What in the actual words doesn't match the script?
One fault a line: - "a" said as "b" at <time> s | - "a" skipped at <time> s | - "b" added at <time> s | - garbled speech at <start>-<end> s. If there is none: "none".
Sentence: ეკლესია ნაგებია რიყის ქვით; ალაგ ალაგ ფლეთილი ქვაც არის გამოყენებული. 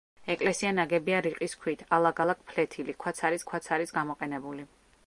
- "ქვაც არის" added at 3.5 s